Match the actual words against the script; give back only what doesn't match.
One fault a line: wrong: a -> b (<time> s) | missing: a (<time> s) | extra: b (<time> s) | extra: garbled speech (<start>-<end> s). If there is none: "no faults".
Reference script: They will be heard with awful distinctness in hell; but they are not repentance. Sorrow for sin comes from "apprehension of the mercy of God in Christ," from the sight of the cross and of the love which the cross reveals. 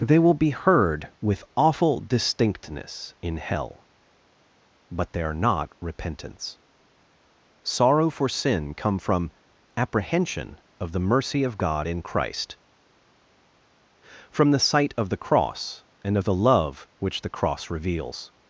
wrong: comes -> come (8.7 s)